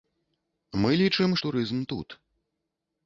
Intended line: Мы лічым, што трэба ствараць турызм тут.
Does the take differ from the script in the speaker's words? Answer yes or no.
yes